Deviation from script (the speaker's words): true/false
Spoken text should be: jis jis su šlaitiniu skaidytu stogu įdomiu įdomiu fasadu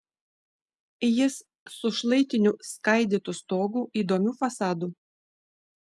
true